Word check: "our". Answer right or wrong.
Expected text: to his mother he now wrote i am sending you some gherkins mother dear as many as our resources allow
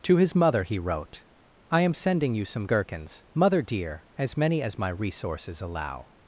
wrong